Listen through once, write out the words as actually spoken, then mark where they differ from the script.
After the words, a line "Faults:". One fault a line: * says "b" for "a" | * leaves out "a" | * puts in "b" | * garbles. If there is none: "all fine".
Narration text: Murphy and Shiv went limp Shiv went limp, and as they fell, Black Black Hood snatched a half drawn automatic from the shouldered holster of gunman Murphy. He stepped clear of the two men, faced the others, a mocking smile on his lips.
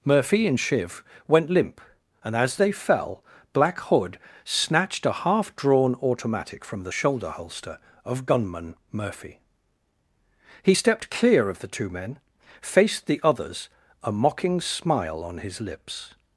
Murphy and Shiv went limp, and as they fell, Black Hood snatched a half drawn automatic from the shoulder holster of gunman Murphy. He stepped clear of the two men, faced the others, a mocking smile on his lips.
Faults:
* leaves out "Shiv went limp"
* leaves out "Black"
* says "shoulder" for "shouldered"